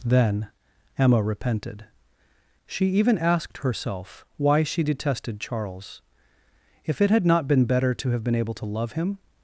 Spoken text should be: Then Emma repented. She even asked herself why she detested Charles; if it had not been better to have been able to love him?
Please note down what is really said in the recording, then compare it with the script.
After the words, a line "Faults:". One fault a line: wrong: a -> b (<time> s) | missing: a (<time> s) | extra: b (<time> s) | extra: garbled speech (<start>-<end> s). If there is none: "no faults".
Then Emma repented. She even asked herself why she detested Charles; if it had not been better to have been able to love him?
Faults:
no faults